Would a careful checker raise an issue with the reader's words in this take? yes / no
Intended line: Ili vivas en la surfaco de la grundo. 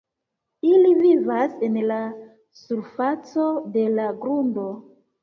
no